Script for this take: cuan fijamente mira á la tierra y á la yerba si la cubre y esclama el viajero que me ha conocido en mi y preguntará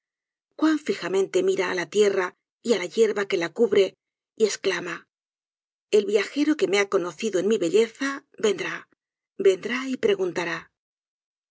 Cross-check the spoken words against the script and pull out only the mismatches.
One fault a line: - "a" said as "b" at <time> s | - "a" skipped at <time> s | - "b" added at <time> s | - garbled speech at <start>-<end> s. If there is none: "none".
- "si" said as "que" at 3.3 s
- "belleza vendrá vendrá" added at 7.6 s